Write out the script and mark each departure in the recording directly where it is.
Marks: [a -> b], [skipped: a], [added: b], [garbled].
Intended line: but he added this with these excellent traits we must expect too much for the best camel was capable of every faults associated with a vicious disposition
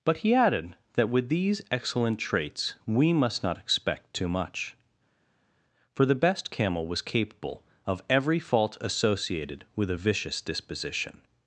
but he added [this -> that] with these excellent traits we must [added: not] expect too much for the best camel was capable of every [faults -> fault] associated with a vicious disposition